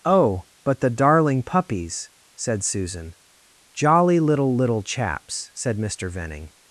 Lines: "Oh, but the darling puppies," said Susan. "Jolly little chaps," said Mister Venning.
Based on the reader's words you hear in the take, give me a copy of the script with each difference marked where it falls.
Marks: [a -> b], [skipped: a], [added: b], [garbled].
"Oh, but the darling puppies," said Susan. "Jolly little [added: little] chaps," said Mister Venning.